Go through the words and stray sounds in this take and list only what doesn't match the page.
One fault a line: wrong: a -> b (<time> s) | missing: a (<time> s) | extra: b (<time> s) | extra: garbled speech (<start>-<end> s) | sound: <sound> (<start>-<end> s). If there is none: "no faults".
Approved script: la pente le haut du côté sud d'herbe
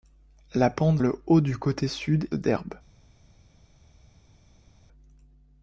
no faults